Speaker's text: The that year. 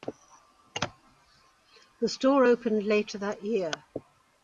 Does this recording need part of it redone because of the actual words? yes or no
yes